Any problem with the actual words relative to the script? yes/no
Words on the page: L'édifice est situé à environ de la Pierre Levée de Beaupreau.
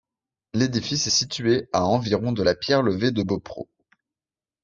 no